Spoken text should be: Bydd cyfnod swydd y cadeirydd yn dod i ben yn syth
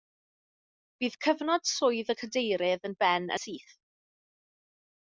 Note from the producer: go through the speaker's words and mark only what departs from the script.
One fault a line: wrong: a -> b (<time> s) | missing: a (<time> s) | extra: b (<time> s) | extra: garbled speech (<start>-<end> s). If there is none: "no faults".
missing: dod (3.0 s)
missing: yn (3.3 s)